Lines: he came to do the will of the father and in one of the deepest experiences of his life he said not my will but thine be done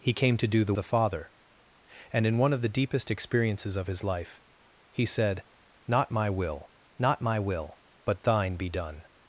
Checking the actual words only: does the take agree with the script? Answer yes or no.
no